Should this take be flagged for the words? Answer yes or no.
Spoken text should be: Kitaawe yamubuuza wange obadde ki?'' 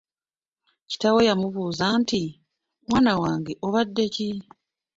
yes